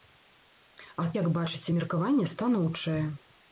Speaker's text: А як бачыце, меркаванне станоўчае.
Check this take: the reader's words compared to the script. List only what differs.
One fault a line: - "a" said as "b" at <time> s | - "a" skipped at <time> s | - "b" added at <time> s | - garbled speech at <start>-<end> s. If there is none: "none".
none